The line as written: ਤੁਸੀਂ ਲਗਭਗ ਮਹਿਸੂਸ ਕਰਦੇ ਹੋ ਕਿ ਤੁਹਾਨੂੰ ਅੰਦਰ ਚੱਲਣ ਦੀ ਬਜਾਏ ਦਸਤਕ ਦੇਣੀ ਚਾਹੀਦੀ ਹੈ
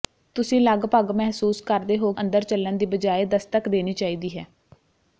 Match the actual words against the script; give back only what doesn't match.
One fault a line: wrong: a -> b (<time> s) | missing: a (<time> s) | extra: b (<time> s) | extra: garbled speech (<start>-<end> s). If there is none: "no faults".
missing: ਕਿ ਤੁਹਾਨੂੰ (2.1 s)